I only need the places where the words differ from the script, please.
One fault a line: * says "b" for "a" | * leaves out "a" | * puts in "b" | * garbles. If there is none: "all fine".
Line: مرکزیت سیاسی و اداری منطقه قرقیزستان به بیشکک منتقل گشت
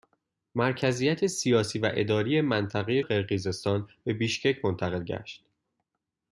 all fine